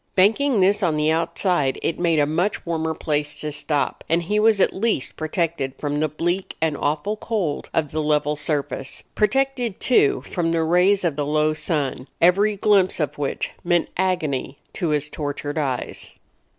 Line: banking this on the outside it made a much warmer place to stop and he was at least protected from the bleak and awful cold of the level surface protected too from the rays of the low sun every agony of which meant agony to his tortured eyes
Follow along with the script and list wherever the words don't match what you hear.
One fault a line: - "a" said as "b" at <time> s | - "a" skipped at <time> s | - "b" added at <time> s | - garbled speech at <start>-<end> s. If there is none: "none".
- "agony" said as "glimpse" at 12.6 s